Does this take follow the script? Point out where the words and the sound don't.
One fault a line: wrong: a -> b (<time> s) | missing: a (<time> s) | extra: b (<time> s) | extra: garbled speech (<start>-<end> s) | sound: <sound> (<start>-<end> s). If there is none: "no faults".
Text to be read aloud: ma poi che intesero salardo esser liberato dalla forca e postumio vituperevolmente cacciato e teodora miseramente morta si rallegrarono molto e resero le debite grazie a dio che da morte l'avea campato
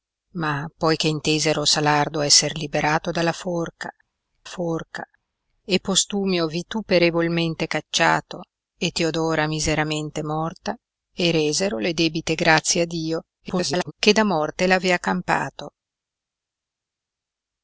extra: forca (4.5 s)
missing: si rallegrarono molto (10.8 s)
extra: garbled speech (13.4-13.9 s)